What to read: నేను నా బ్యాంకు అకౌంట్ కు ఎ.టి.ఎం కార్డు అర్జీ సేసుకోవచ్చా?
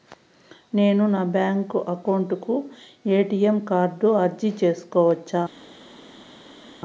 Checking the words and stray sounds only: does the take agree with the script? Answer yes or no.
yes